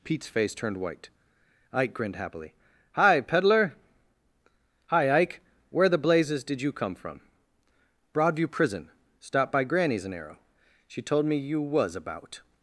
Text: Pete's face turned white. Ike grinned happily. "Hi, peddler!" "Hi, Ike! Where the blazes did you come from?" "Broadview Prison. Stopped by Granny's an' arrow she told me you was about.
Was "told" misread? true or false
false